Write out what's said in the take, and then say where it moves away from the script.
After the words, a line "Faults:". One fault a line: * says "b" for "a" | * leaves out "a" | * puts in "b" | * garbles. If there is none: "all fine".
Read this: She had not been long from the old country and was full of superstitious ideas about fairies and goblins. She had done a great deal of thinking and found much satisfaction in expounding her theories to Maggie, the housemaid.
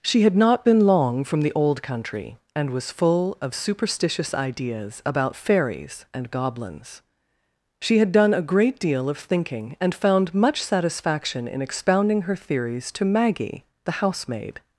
She had not been long from the old country and was full of superstitious ideas about fairies and goblins. She had done a great deal of thinking and found much satisfaction in expounding her theories to Maggie, the housemaid.
Faults:
all fine